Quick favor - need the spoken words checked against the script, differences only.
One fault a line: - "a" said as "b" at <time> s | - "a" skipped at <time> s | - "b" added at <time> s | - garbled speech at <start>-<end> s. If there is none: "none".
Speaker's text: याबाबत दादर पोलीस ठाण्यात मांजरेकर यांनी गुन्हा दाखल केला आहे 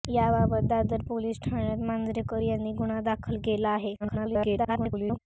- garbled speech at 4.0-5.2 s